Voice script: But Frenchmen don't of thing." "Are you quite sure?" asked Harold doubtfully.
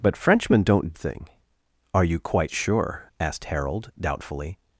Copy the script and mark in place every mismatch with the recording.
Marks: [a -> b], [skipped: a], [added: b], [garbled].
But Frenchmen don't of thing." "Are you quite sure?" asked Harold doubtfully.